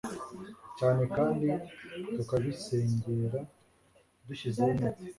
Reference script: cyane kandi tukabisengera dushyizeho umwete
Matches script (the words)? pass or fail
pass